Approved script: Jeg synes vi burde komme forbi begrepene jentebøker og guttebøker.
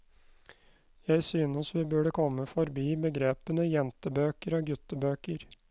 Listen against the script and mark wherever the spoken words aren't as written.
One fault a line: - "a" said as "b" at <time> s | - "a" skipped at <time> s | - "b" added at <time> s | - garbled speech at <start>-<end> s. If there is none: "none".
none